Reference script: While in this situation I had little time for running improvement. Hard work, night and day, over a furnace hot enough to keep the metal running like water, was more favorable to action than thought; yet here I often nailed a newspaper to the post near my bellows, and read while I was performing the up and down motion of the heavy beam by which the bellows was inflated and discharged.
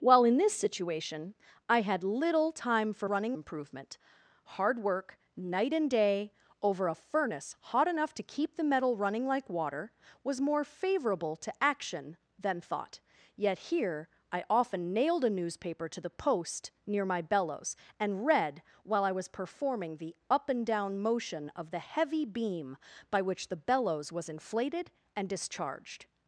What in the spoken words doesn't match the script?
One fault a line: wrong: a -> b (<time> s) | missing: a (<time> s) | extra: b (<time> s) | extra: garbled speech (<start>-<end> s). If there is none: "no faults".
no faults